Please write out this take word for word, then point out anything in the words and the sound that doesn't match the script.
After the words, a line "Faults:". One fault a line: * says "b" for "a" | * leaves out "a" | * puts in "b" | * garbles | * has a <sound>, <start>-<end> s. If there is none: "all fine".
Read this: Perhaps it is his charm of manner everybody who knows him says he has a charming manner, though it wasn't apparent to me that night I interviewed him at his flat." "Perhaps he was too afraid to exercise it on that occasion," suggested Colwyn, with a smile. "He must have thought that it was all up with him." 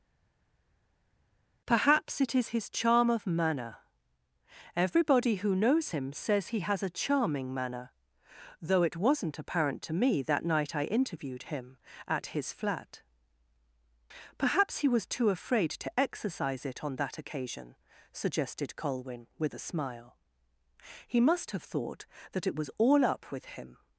Perhaps it is his charm of manner everybody who knows him says he has a charming manner, though it wasn't apparent to me that night I interviewed him at his flat." "Perhaps he was too afraid to exercise it on that occasion," suggested Colwyn, with a smile. "He must have thought that it was all up with him."
Faults:
all fine